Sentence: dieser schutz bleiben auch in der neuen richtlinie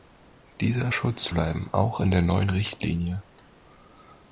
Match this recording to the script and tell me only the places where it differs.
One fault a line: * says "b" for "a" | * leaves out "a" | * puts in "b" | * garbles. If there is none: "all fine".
all fine